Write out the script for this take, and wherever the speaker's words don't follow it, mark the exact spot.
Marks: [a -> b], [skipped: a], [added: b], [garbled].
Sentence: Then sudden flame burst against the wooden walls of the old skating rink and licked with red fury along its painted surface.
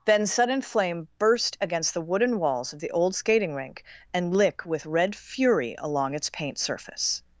Then sudden flame burst against the wooden walls of the old skating rink and [licked -> lick] with red fury along its [painted -> paint] surface.